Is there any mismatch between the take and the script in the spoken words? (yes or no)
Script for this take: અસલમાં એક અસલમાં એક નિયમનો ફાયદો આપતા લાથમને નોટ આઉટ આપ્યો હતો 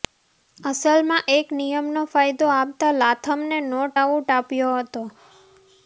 yes